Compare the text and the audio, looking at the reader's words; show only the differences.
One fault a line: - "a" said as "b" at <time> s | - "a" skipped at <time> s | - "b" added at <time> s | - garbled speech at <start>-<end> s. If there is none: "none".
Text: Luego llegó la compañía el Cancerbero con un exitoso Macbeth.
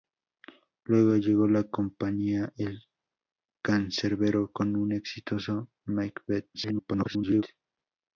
- garbled speech at 6.5-7.4 s